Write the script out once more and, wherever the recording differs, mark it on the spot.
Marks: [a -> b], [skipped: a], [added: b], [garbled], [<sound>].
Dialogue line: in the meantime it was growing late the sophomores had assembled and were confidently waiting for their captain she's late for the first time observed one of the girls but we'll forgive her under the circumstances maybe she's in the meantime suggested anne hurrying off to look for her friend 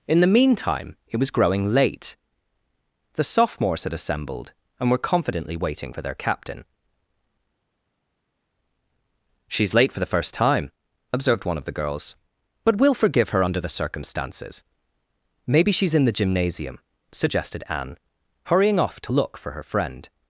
in the meantime it was growing late the sophomores had assembled and were confidently waiting for their captain she's late for the first time observed one of the girls but we'll forgive her under the circumstances maybe she's in the [meantime -> gymnasium] suggested anne hurrying off to look for her friend